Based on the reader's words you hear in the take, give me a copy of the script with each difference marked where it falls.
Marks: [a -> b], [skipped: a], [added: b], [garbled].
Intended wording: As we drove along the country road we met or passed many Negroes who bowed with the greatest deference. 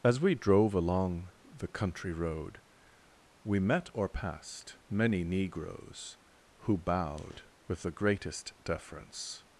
As we drove along the country road we met or passed many Negroes who bowed with the greatest deference.